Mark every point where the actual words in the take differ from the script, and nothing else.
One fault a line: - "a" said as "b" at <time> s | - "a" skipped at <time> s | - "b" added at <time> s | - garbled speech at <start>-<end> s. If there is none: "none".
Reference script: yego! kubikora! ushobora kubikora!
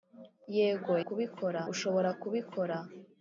none